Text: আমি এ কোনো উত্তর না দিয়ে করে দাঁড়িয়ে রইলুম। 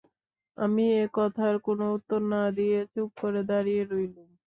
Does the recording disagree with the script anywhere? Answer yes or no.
yes